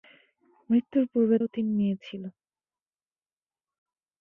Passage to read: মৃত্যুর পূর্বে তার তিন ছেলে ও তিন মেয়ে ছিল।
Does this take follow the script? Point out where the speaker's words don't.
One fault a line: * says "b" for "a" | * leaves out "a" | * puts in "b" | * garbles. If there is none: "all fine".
* leaves out "তার তিন ছেলে"